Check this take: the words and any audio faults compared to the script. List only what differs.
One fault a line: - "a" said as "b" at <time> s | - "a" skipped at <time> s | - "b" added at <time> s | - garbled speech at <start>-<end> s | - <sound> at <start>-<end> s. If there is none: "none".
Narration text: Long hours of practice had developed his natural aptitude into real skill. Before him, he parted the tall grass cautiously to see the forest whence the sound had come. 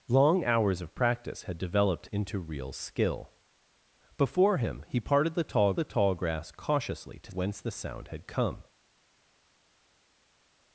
- "his natural aptitude" skipped at 2.1 s
- "the tall" added at 5.7 s
- "see the forest" skipped at 7.3 s